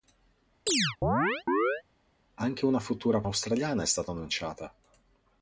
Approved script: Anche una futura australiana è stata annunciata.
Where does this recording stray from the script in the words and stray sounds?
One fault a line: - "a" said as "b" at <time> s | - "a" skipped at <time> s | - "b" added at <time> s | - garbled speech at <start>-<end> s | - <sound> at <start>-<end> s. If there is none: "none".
- chirp at 0.7-1.8 s